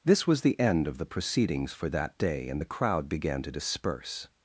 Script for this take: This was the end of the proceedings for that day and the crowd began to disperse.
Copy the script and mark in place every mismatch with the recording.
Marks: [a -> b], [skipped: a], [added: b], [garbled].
This was the end of the proceedings for that day and the crowd began to disperse.